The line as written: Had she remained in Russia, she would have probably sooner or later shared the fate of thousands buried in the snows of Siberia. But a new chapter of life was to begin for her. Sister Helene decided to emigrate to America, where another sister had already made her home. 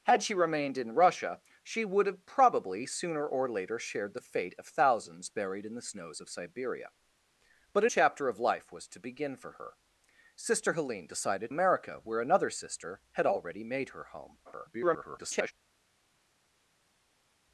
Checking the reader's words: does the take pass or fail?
fail